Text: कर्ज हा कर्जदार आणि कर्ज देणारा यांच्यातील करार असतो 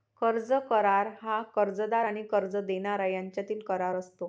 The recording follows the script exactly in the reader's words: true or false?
false